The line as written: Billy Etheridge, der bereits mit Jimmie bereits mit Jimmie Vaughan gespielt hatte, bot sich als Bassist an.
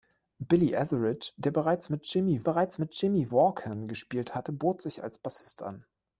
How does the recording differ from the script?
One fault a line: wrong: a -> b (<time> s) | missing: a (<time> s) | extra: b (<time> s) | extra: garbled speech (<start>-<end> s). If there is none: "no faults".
no faults